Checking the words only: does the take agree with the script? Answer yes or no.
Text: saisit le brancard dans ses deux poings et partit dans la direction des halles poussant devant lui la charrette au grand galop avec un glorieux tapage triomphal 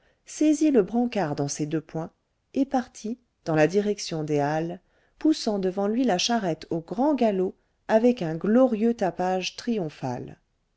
yes